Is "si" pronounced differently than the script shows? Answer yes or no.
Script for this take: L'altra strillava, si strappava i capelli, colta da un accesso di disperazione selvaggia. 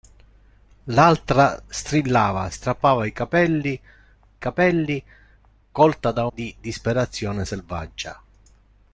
yes